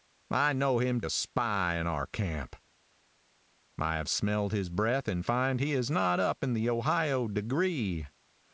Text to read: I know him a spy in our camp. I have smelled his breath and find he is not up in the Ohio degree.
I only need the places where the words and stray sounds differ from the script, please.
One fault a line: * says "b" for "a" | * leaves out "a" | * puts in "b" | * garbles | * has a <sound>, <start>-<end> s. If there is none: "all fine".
all fine